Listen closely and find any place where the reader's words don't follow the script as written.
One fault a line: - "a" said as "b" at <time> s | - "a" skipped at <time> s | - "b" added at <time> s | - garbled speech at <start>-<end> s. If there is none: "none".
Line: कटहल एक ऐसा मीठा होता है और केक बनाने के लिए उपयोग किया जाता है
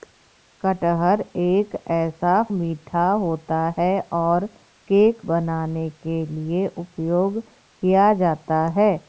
none